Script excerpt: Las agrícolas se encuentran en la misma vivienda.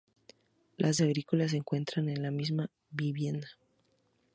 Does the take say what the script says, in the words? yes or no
yes